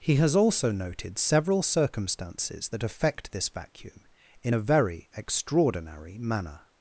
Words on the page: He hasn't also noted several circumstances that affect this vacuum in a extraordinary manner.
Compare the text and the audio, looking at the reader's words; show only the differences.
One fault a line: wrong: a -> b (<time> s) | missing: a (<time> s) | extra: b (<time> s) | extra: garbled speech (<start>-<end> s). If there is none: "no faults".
wrong: hasn't -> has (0.1 s)
extra: very (4.6 s)